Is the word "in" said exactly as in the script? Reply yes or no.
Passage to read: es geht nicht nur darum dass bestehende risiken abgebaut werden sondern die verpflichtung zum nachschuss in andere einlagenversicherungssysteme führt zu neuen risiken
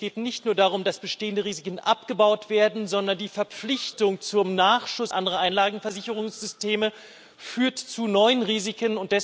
no